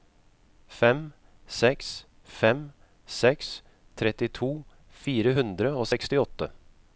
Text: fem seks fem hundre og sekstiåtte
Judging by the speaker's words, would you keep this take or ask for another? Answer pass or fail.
fail